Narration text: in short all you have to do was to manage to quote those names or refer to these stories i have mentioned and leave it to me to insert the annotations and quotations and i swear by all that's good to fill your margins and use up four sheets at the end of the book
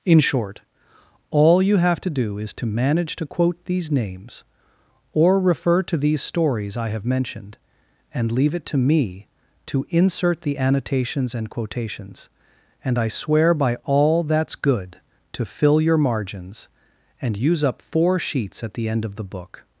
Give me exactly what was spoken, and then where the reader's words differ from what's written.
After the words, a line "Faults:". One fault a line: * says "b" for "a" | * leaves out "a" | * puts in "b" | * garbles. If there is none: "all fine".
in short all you have to do is to manage to quote these names or refer to these stories i have mentioned and leave it to me to insert the annotations and quotations and i swear by all that's good to fill your margins and use up four sheets at the end of the book
Faults:
* says "is" for "was"
* says "these" for "those"